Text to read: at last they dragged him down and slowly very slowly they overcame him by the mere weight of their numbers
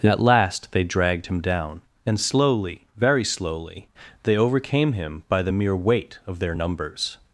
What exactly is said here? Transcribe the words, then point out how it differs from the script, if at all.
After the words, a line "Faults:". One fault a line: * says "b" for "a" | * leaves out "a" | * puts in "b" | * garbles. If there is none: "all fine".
at last they dragged him down and slowly very slowly they overcame him by the mere weight of their numbers
Faults:
all fine